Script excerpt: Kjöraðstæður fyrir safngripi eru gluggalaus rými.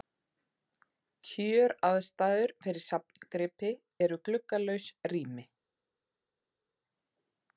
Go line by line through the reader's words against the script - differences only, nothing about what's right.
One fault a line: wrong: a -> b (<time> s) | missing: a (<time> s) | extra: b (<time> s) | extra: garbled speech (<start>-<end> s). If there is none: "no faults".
no faults